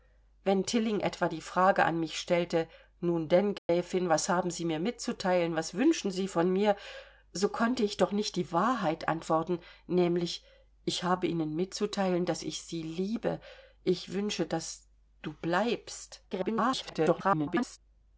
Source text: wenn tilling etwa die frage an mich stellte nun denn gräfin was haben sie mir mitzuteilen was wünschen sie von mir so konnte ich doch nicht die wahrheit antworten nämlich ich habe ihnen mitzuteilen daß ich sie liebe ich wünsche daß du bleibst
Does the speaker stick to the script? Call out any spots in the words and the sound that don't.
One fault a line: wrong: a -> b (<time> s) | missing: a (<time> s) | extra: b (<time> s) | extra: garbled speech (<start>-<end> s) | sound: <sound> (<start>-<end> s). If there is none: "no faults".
sound: dropout (3.6-3.7 s)
extra: garbled speech (16.3-17.8 s)